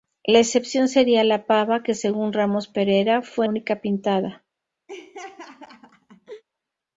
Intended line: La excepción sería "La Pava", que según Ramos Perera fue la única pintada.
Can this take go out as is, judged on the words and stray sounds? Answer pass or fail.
fail